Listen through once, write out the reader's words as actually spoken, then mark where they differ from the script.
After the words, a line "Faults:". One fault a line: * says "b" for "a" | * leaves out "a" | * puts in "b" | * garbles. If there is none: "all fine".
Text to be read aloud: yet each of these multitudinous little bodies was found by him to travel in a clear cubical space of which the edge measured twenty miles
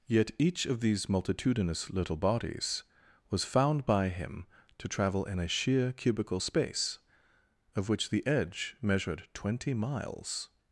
yet each of these multitudinous little bodies was found by him to travel in a sheer cubical space of which the edge measured twenty miles
Faults:
* says "sheer" for "clear"